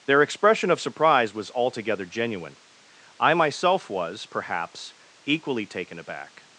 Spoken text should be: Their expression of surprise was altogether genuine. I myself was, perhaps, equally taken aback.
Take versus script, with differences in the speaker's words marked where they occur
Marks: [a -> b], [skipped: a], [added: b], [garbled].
Their expression of surprise was altogether genuine. I myself was, perhaps, equally taken aback.